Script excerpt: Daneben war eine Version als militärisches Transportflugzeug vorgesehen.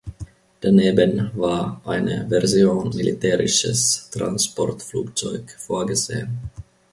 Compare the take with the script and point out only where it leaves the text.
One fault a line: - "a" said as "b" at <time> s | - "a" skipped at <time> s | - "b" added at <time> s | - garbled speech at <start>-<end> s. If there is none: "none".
- "als" skipped at 3.0 s